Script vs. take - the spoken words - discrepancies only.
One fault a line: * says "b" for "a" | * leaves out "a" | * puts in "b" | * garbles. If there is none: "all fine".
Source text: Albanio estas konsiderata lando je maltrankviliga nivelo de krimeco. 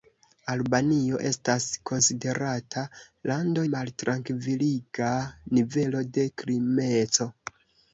* leaves out "je"